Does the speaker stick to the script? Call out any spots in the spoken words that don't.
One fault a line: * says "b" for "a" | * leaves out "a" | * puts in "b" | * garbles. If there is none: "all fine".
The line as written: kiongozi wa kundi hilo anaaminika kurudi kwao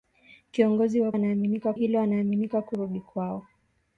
* says "anaaminika" for "kundi"